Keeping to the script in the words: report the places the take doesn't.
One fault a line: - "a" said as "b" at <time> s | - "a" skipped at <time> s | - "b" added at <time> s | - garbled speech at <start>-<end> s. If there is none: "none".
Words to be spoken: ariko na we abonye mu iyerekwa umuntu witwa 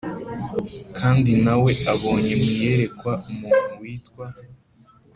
- "ariko" said as "kandi" at 1.0 s